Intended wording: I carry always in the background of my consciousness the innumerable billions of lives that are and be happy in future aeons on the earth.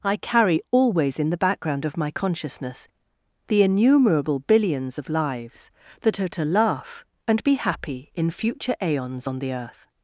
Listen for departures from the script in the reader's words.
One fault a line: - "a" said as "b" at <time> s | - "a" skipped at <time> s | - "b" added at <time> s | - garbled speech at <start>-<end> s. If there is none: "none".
- "to laugh" added at 6.3 s